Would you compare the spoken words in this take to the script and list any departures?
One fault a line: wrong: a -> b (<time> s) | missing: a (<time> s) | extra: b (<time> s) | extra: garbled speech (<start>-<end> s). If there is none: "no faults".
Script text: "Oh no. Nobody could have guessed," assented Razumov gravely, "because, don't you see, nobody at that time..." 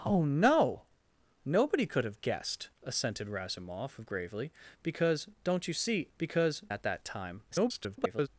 wrong: nobody -> because (6.2 s)
extra: garbled speech (7.5-8.3 s)